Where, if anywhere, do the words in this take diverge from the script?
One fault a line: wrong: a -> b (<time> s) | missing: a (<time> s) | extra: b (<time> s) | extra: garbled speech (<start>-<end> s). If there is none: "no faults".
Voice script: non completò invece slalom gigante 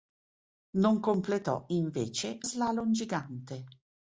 no faults